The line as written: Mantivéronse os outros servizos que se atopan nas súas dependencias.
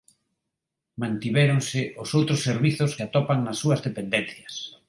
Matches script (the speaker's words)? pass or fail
fail